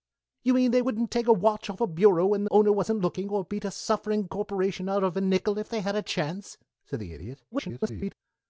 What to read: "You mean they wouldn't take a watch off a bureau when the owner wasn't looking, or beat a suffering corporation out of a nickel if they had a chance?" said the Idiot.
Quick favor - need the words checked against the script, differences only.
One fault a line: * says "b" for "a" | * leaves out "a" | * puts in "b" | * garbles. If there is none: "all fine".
* leaves out "the"
* garbles